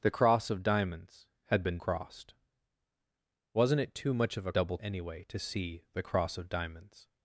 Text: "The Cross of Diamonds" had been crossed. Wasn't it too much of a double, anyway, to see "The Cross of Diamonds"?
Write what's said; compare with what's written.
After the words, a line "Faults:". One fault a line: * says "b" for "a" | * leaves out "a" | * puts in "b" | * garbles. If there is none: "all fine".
"The Cross of Diamonds" had been crossed. Wasn't it too much of a double, anyway, to see "The Cross of Diamonds"?
Faults:
all fine